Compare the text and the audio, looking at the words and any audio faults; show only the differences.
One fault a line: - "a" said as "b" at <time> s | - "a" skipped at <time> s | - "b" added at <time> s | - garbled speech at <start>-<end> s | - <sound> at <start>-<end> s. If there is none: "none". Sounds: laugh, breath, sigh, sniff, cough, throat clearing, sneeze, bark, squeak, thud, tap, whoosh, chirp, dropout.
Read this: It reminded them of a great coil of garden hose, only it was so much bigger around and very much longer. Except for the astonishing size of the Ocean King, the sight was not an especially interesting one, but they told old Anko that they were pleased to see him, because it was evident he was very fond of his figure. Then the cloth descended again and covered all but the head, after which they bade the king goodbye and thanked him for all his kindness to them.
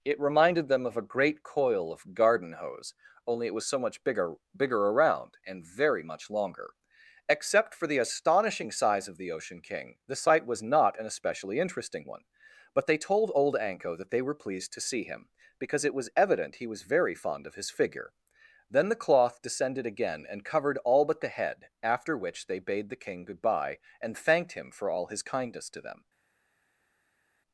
- "bigger" added at 4.6 s